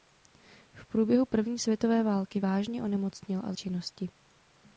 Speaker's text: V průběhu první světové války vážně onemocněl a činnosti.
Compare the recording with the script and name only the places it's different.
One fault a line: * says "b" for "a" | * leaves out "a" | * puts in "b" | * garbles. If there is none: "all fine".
all fine